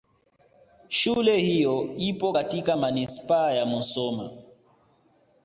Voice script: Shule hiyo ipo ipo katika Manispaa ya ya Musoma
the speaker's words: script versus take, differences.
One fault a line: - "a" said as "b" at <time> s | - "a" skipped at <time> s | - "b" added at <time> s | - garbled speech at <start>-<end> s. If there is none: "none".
- "ipo" skipped at 2.3 s
- "ya" skipped at 3.7 s